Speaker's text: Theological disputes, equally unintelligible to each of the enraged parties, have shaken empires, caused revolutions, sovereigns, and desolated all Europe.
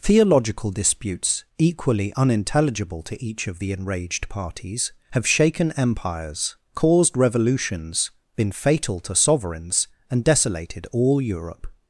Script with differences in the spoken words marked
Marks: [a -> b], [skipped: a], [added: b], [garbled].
Theological disputes, equally unintelligible to each of the enraged parties, have shaken empires, caused revolutions, [added: been fatal to] sovereigns, and desolated all Europe.